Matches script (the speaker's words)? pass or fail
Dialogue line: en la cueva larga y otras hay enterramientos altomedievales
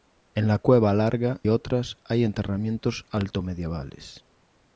fail